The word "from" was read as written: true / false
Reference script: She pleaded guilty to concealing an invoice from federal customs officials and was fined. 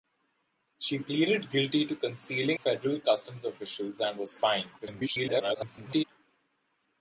false